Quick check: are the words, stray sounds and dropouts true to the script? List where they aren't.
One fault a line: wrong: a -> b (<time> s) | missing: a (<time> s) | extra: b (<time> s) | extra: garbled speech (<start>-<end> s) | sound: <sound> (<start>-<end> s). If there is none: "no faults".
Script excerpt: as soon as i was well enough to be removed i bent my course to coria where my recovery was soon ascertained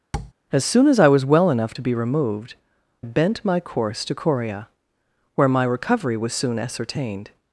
sound: tap (0.1-0.3 s)
missing: i (2.5 s)